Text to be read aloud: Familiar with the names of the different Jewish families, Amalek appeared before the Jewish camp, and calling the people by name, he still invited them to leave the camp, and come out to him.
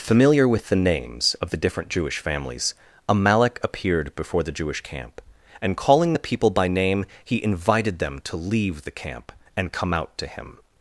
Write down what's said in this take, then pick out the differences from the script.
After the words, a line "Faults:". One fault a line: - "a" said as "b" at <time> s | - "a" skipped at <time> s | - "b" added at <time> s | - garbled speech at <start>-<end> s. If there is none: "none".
Familiar with the names of the different Jewish families, Amalek appeared before the Jewish camp, and calling the people by name, he invited them to leave the camp, and come out to him.
Faults:
- "still" skipped at 7.4 s